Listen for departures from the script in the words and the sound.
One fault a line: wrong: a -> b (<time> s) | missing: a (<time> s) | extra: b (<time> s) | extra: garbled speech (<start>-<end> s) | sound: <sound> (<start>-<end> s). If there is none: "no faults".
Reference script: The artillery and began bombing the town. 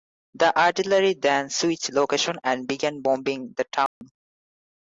extra: then switched location (1.2 s)
sound: dropout (3.9-4.0 s)